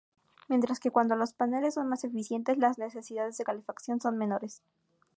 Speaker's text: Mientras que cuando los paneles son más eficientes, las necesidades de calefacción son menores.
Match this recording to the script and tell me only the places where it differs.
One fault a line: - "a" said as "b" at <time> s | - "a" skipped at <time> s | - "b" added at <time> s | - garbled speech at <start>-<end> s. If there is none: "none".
none